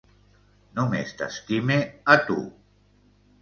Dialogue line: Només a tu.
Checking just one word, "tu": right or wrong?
right